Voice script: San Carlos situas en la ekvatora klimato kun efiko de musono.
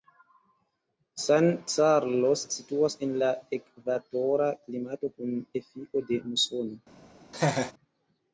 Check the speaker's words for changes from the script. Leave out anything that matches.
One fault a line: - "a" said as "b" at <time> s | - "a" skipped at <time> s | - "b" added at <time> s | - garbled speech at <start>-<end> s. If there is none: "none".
none